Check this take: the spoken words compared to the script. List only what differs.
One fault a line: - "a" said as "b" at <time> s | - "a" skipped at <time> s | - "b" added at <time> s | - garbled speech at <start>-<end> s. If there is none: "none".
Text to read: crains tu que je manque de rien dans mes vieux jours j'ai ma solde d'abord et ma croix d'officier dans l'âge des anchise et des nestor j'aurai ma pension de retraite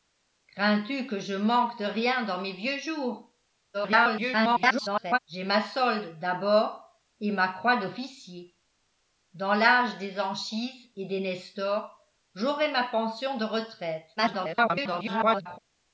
- garbled speech at 3.7-5.2 s
- garbled speech at 14.2-15.6 s